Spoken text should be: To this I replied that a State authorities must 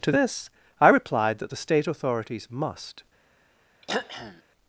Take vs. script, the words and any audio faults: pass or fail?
fail